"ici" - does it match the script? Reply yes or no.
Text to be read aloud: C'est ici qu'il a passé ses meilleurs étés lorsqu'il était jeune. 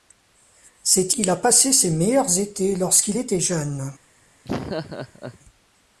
no